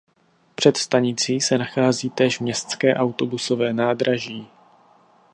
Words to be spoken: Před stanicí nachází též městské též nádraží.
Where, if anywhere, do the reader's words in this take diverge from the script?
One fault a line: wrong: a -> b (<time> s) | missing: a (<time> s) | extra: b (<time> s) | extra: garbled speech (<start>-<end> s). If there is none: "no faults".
extra: se (1.4 s)
wrong: též -> autobusové (3.0 s)